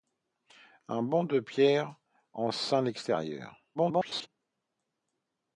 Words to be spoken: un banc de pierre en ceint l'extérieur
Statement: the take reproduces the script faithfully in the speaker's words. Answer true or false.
false